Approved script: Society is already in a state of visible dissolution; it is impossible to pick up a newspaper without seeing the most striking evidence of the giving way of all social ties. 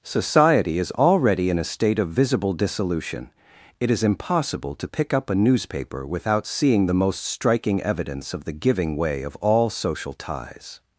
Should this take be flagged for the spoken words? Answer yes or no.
no